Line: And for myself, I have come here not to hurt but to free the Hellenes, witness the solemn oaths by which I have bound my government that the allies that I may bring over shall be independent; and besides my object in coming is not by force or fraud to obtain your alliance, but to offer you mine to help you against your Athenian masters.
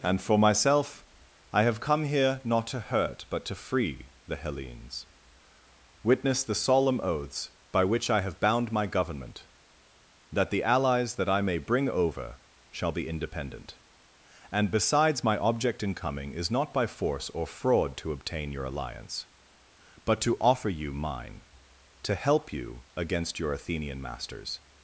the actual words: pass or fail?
pass